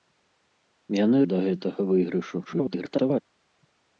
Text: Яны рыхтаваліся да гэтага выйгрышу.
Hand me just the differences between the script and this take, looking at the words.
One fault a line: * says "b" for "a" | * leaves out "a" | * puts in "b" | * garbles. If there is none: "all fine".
* leaves out "рыхтаваліся"
* garbles